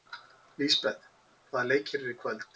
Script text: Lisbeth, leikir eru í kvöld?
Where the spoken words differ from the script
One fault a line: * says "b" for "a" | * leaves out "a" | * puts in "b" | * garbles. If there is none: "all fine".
* puts in "hvaða"